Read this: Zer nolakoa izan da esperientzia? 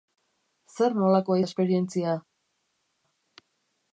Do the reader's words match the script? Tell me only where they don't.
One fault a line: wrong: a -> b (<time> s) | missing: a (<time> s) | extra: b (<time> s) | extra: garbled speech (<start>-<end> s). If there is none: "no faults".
missing: izan (1.4 s)